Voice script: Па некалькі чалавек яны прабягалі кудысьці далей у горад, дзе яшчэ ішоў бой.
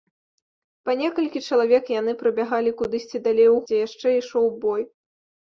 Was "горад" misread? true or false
true